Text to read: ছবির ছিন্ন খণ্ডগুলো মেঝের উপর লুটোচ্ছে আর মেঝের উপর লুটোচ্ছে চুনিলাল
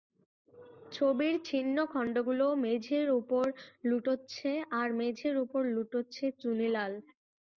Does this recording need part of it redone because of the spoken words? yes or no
no